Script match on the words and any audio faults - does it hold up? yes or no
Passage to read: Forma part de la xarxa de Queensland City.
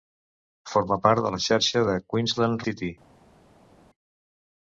yes